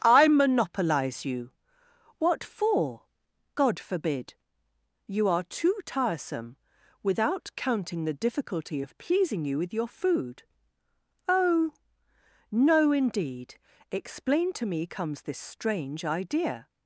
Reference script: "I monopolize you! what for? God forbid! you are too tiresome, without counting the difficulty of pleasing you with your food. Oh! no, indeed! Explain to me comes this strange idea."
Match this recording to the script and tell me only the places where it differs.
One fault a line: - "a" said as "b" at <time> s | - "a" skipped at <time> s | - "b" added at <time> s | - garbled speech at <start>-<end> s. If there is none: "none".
none